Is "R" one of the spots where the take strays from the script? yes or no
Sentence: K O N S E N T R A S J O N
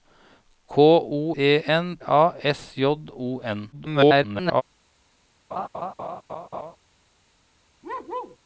yes